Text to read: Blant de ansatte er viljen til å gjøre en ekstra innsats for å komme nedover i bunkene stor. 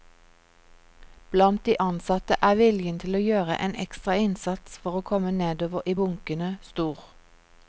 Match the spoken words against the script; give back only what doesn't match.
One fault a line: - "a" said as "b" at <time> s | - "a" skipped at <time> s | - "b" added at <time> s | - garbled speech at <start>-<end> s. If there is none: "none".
none